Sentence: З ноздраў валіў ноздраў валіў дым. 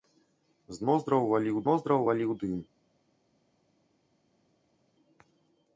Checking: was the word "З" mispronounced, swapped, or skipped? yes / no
no